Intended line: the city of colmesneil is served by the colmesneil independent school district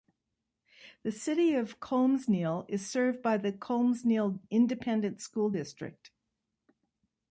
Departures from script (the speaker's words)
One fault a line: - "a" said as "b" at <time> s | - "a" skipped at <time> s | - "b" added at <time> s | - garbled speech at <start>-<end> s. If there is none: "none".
none